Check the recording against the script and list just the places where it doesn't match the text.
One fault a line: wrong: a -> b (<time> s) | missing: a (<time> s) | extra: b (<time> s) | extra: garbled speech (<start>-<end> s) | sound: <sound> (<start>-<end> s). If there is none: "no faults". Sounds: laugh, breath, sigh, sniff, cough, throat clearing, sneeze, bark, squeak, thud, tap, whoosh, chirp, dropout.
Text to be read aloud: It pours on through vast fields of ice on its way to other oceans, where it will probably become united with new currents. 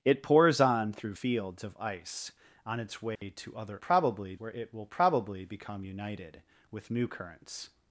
missing: vast (1.1 s)
sound: dropout (3.2-3.2 s)
wrong: oceans -> probably (3.8 s)